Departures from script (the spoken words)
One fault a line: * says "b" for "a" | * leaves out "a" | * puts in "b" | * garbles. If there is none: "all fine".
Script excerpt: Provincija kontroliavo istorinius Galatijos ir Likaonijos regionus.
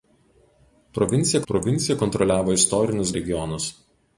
* puts in "provincija"
* leaves out "Galatijos ir Likaonijos"